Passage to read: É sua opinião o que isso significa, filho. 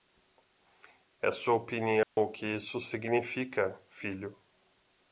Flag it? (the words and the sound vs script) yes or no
yes